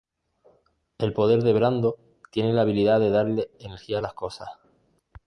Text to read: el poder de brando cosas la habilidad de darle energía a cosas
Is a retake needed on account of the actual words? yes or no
yes